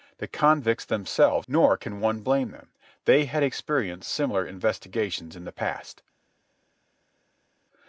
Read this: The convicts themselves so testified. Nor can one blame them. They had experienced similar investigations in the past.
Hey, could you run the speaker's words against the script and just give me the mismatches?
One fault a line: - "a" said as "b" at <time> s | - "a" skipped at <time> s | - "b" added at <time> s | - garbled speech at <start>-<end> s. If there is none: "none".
- "so testified" skipped at 1.5 s